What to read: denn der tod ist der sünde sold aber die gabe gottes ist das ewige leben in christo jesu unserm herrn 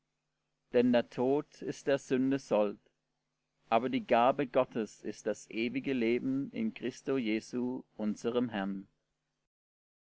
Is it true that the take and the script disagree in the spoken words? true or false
false